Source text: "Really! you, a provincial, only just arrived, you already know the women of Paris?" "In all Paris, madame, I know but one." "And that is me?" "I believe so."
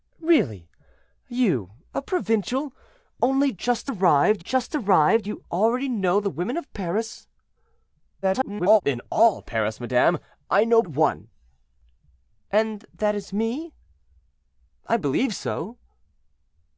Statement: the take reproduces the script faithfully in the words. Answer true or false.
false